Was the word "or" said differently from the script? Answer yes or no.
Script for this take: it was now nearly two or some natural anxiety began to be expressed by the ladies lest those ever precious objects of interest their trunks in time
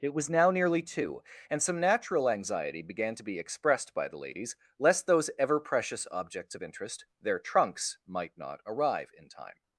yes